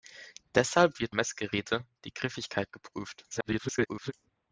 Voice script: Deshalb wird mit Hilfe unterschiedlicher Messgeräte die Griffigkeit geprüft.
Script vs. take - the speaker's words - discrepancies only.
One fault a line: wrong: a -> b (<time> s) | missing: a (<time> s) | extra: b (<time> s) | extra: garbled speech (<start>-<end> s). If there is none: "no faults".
missing: mit Hilfe unterschiedlicher (1.1 s)
extra: garbled speech (3.3-4.1 s)